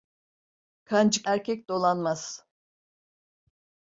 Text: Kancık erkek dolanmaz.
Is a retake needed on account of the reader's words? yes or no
no